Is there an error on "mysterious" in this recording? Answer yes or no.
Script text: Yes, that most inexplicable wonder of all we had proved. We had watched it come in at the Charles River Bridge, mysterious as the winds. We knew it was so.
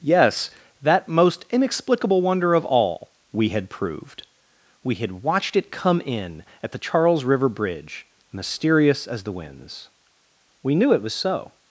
no